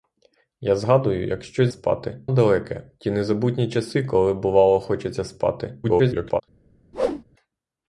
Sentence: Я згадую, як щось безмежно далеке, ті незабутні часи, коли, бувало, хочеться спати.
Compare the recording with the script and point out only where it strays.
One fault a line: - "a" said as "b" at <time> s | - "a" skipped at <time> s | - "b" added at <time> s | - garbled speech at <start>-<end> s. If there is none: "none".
- "безмежно" said as "спати" at 1.7 s
- garbled speech at 5.8-6.4 s